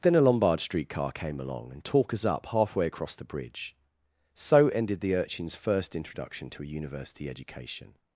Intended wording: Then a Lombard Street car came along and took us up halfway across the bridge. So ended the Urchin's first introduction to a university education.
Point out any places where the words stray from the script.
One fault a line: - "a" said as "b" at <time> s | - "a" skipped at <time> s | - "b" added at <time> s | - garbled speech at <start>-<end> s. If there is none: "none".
- "took" said as "talk" at 1.8 s